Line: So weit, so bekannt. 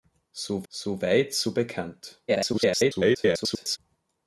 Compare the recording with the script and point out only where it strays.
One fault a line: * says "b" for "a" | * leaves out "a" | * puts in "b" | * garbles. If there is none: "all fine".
* puts in "so"
* garbles